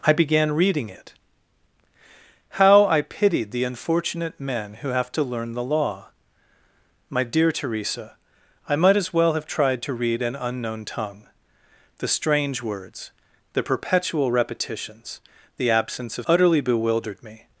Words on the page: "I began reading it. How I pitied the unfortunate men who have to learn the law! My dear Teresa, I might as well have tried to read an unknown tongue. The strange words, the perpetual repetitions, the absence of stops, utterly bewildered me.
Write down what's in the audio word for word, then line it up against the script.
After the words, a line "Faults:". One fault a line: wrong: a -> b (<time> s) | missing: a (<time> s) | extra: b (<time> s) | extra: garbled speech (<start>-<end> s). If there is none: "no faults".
"I began reading it. How I pitied the unfortunate men who have to learn the law! My dear Teresa, I might as well have tried to read an unknown tongue. The strange words, the perpetual repetitions, the absence of utterly bewildered me.
Faults:
missing: stops (16.3 s)